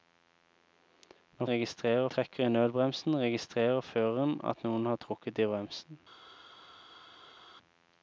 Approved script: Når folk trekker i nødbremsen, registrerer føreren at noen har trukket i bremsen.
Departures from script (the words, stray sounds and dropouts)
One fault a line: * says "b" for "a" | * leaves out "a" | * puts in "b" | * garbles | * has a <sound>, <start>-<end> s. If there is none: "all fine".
* says "registrerer" for "folk"